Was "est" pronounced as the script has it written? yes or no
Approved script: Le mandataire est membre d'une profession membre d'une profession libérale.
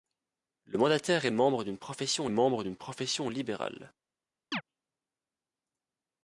yes